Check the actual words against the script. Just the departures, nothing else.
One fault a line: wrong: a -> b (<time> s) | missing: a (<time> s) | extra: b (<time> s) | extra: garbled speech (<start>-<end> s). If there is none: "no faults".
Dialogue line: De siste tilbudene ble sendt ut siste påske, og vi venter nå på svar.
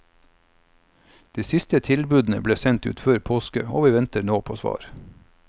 wrong: siste -> før (3.0 s)